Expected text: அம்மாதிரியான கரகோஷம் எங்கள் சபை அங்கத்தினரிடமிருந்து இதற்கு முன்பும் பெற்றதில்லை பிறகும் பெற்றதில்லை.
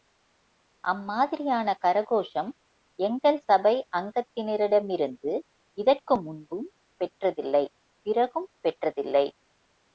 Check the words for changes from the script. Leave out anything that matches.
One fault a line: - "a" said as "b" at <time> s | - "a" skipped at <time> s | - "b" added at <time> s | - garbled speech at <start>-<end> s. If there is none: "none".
none